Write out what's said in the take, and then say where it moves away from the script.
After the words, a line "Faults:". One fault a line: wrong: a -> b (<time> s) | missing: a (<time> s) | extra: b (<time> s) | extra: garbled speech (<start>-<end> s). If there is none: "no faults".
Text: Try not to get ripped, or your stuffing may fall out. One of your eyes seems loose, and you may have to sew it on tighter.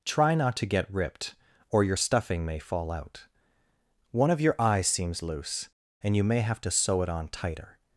Try not to get ripped, or your stuffing may fall out. One of your eyes seems loose, and you may have to sew it on tighter.
Faults:
no faults